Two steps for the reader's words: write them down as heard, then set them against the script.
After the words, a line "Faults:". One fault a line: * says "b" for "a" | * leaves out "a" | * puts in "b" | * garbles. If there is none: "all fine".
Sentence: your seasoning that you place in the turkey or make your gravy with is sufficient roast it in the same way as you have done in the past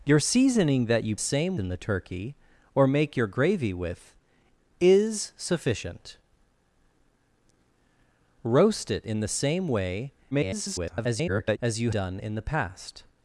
your seasoning that you same in the turkey or make your gravy with is sufficient roast it in the same way [garbled] as you done in the past
Faults:
* says "same" for "place"
* garbles
* leaves out "have"